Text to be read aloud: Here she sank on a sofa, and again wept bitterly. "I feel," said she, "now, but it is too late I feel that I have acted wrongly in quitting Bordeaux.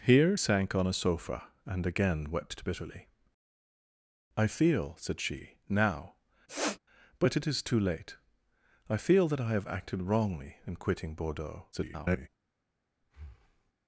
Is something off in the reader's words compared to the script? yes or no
yes